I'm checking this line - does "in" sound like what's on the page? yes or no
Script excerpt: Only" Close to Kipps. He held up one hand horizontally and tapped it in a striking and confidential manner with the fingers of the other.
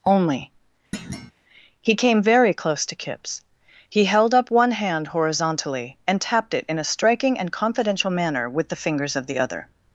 yes